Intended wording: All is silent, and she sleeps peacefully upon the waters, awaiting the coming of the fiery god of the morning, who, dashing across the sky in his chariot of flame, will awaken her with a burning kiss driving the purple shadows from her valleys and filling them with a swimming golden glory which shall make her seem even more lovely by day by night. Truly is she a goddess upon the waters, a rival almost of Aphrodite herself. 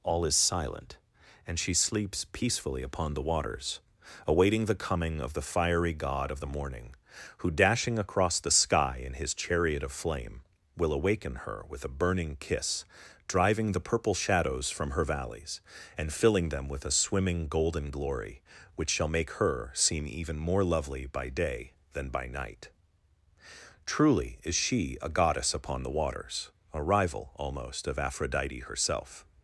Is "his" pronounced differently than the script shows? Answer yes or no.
no